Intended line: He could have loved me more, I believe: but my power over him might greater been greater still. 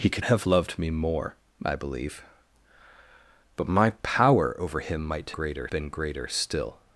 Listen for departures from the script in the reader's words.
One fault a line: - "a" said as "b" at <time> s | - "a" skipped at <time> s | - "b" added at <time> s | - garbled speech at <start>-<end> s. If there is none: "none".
none